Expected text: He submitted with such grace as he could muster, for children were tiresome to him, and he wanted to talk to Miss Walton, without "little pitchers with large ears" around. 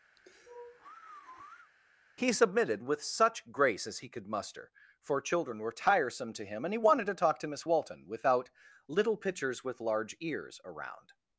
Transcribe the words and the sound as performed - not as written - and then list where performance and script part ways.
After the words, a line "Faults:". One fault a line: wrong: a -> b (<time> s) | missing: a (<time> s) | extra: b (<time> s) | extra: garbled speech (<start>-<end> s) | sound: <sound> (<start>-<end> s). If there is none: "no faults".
He submitted with such grace as he could muster, for children were tiresome to him, and he wanted to talk to Miss Walton, without "little pitchers with large ears" around.
Faults:
sound: sigh (0.2-1.7 s)